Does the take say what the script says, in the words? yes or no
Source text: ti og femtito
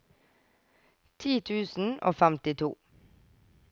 no